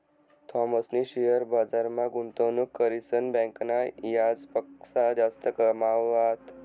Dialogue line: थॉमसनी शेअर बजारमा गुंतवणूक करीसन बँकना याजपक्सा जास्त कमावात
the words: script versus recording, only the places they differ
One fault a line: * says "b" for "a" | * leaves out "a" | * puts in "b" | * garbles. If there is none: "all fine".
all fine